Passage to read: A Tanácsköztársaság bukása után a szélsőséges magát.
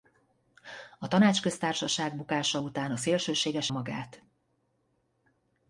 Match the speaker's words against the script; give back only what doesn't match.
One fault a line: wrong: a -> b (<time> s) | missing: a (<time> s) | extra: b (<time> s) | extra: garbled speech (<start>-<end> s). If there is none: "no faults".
no faults